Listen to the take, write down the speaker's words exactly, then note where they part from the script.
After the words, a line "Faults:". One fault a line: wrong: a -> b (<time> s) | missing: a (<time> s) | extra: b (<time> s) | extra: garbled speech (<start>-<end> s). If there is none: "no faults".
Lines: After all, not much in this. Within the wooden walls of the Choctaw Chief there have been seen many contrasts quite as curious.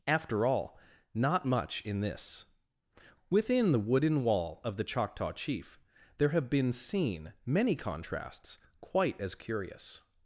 After all, not much in this. Within the wooden wall of the Choctaw Chief there have been seen many contrasts quite as curious.
Faults:
wrong: walls -> wall (4.2 s)